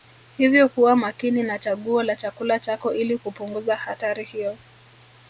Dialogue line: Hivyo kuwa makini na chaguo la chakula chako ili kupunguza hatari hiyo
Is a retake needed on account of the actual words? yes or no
no